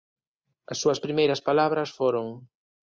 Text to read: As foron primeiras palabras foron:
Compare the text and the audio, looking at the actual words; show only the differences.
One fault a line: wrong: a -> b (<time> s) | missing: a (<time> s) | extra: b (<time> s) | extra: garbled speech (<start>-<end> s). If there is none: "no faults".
wrong: foron -> súas (0.8 s)